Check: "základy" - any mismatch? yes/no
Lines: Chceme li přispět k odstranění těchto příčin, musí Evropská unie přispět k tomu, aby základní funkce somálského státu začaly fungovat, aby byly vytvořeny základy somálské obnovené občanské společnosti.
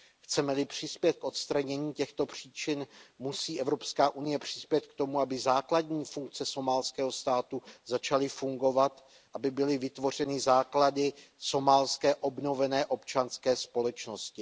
no